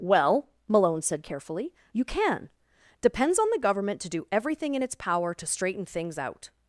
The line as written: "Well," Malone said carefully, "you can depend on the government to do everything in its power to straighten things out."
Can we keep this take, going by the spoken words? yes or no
no